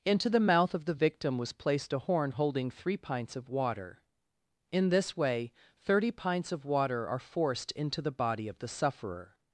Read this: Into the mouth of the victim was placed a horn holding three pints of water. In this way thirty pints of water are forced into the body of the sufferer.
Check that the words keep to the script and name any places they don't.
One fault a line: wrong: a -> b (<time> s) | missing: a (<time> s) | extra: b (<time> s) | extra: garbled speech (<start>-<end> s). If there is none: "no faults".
no faults